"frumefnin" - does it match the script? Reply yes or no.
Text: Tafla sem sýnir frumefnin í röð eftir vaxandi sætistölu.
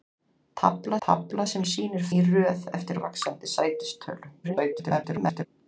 no